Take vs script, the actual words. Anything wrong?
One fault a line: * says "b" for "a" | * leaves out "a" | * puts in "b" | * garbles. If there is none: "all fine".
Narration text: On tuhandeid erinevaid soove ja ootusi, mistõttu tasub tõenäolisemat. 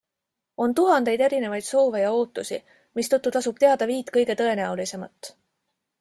* puts in "teada viit kõige"